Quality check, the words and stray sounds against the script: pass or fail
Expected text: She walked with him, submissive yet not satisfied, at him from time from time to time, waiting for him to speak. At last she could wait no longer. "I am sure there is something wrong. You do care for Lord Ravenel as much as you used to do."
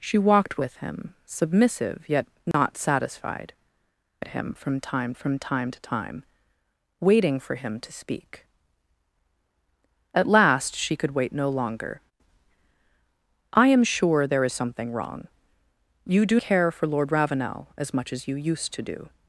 fail